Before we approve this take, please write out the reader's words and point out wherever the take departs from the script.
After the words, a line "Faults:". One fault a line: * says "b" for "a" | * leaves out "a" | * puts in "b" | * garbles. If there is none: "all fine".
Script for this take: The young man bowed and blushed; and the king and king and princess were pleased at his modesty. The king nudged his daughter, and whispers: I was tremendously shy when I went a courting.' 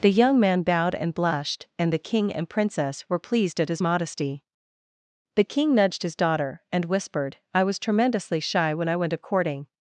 The young man bowed and blushed; and the king and princess were pleased at his modesty. The king nudged his daughter, and whispered: I was tremendously shy when I went a courting.'
Faults:
* leaves out "king and"
* says "whispered" for "whispers"